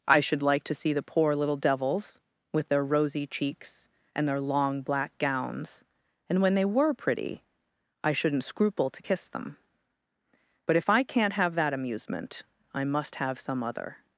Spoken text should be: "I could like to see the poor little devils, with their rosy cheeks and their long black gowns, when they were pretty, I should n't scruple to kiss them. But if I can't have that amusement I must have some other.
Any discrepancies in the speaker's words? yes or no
yes